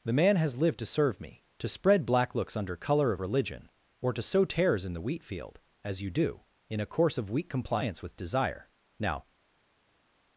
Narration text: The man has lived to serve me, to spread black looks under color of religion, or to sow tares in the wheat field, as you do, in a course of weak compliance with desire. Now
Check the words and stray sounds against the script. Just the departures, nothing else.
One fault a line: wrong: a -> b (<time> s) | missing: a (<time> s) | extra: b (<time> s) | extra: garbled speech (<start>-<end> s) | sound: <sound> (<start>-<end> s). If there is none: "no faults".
no faults